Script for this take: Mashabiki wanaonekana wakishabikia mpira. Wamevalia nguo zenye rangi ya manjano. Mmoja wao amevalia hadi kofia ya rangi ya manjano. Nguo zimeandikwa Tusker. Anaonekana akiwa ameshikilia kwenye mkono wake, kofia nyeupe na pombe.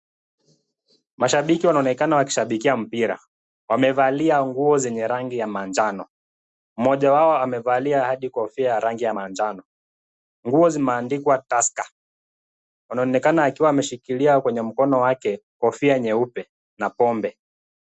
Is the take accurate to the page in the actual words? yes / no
yes